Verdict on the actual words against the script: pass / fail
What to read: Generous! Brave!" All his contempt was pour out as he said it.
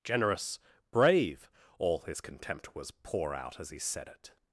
pass